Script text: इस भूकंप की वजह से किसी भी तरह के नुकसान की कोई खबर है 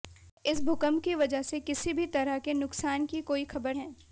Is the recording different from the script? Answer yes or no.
no